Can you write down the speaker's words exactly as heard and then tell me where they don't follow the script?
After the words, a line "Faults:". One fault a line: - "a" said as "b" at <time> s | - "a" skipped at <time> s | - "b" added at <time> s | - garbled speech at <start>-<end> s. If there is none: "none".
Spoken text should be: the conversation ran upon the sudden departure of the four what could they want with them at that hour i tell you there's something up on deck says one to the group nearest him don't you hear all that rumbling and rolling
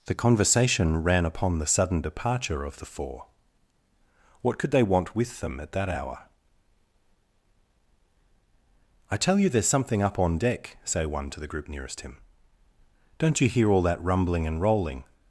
the conversation ran upon the sudden departure of the four what could they want with them at that hour i tell you there's something up on deck say one to the group nearest him don't you hear all that rumbling and rolling
Faults:
- "says" said as "say" at 10.8 s